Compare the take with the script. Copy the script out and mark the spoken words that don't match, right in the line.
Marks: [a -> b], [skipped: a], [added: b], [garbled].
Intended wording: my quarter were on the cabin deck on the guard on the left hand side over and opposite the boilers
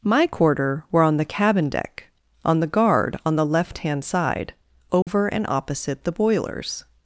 my quarter were on the cabin deck on the guard on the left hand side over and opposite the boilers